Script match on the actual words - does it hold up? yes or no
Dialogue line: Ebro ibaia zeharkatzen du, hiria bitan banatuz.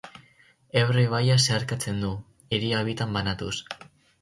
yes